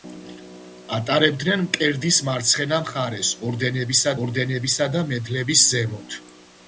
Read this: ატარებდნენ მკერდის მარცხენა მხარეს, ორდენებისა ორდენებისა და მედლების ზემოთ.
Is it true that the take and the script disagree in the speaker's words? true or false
false